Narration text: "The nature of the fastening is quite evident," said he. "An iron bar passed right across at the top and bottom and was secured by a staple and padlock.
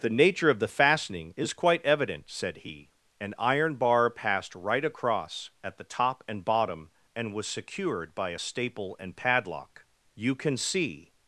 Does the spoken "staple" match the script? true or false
true